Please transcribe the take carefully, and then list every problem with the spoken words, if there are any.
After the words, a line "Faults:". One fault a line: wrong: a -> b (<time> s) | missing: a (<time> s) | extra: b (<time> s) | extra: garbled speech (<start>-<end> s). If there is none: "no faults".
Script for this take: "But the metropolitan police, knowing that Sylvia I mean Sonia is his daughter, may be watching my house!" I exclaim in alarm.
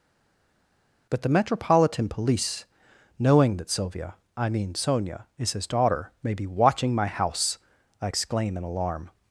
"But the metropolitan police, knowing that Sylvia I mean Sonia is his daughter, may be watching my house!" I exclaim in alarm.
Faults:
no faults